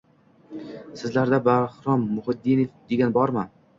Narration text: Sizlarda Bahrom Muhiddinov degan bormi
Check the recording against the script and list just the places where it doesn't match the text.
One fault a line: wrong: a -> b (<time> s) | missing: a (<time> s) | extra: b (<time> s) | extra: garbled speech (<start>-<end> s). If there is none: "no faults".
no faults